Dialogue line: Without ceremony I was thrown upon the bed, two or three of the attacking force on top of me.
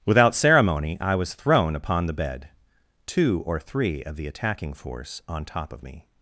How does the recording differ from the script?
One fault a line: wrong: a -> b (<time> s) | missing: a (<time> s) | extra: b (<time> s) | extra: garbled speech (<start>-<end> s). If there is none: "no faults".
no faults